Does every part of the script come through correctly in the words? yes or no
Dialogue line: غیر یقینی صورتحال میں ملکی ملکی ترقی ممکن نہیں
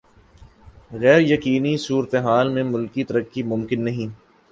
no